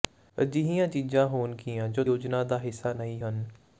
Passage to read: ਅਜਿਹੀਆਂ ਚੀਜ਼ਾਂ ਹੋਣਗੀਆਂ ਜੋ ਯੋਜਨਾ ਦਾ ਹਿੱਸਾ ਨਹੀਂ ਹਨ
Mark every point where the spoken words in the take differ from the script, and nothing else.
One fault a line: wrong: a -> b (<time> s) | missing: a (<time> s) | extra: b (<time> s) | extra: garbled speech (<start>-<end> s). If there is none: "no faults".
no faults